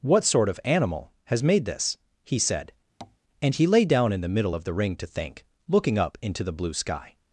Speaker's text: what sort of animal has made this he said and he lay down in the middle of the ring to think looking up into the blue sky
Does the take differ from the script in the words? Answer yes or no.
no